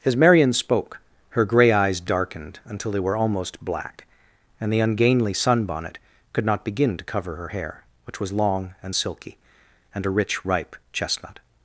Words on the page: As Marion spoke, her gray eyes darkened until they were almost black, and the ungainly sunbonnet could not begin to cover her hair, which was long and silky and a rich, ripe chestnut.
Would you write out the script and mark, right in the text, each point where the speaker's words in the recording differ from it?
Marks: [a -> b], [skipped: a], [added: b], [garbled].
As Marion spoke, her gray eyes darkened until they were almost black, and the ungainly sunbonnet could not begin to cover her hair, which was long and silky and a rich, ripe chestnut.